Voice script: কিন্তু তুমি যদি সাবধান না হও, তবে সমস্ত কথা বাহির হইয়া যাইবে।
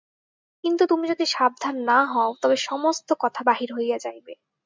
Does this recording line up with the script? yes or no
yes